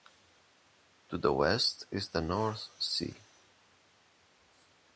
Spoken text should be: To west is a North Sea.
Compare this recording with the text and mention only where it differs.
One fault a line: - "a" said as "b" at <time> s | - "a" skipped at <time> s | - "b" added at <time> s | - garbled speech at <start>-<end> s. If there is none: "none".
- "the" added at 1.2 s
- "a" said as "the" at 2.1 s